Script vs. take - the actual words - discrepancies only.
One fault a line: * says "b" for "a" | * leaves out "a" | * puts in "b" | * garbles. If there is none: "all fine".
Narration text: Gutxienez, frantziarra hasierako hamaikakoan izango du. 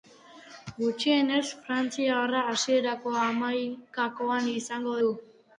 all fine